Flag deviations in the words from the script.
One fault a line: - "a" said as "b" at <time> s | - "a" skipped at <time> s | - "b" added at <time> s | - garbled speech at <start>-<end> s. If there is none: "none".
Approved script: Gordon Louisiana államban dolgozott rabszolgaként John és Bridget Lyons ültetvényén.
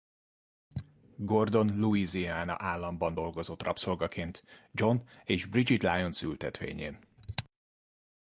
none